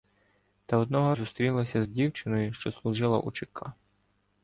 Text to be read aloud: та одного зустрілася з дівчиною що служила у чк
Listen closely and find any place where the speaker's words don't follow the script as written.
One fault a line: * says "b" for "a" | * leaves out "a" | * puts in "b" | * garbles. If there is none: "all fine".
all fine